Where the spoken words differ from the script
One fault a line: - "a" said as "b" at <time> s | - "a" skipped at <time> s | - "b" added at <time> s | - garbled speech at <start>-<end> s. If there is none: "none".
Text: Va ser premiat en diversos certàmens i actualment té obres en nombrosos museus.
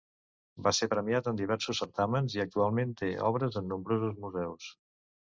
none